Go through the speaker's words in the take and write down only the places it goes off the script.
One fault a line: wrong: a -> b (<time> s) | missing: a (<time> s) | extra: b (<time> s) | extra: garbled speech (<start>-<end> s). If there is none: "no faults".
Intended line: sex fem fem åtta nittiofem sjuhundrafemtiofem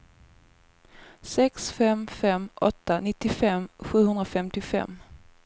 no faults